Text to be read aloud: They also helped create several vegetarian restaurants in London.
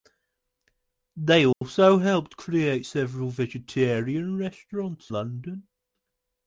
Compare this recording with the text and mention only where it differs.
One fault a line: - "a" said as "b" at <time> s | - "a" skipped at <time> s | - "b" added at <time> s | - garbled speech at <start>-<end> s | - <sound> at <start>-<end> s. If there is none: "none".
- dropout at 1.5-1.6 s
- "in" skipped at 5.1 s